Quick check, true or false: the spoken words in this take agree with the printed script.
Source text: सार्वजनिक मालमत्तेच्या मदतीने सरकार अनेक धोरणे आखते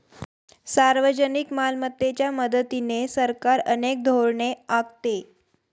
true